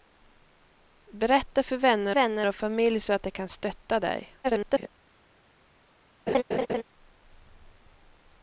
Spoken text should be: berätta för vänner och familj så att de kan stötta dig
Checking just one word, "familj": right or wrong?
right